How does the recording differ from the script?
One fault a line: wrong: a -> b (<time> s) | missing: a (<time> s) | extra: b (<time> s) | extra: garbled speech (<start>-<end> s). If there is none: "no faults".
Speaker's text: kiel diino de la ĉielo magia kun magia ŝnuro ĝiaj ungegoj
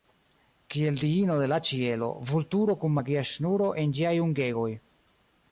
wrong: magia -> vulturo (2.3 s)
extra: en (3.8 s)